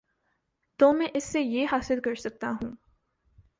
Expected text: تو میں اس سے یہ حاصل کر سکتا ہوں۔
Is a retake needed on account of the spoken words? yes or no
no